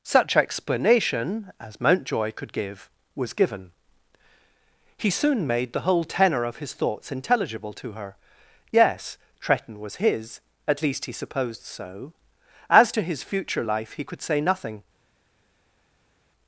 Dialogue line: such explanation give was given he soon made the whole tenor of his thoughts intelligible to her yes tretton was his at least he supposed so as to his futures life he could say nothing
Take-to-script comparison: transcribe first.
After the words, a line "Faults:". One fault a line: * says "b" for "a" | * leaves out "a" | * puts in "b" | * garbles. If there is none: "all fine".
such explanation as mountjoy could give was given he soon made the whole tenor of his thoughts intelligible to her yes tretton was his at least he supposed so as to his future life he could say nothing
Faults:
* puts in "as mountjoy could"
* says "future" for "futures"